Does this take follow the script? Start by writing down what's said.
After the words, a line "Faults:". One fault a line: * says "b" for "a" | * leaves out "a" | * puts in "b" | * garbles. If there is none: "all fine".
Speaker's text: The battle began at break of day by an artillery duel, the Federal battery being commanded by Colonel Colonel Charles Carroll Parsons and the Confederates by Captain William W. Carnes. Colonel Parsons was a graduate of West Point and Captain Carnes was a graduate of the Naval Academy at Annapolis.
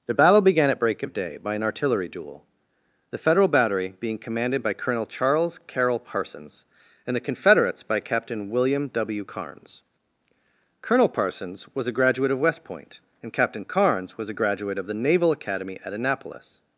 The battle began at break of day by an artillery duel, the Federal battery being commanded by Colonel Charles Carroll Parsons and the Confederates by Captain William W. Carnes. Colonel Parsons was a graduate of West Point and Captain Carnes was a graduate of the Naval Academy at Annapolis.
Faults:
* leaves out "Colonel"